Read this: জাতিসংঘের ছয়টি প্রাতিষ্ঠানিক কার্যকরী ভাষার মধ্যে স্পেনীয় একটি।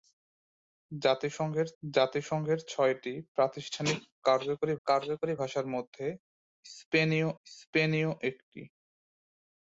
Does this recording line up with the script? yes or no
no